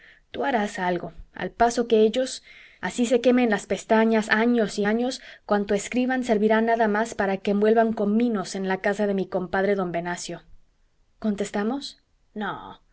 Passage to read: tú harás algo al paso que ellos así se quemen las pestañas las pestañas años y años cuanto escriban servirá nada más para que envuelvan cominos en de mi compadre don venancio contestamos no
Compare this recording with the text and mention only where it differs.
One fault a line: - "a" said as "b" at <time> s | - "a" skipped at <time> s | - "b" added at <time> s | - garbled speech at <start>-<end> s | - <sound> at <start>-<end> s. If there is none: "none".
- "las pestañas" skipped at 4.3 s
- "la casa" added at 8.7 s